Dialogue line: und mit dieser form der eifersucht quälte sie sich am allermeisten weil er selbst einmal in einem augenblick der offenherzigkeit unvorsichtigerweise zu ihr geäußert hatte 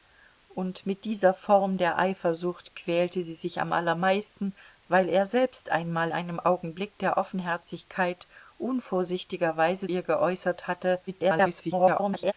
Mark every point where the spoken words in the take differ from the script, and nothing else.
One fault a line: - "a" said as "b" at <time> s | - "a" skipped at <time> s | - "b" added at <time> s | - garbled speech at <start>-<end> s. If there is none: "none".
- "in" skipped at 6.1 s
- "zu" skipped at 9.9 s
- garbled speech at 11.1-12.3 s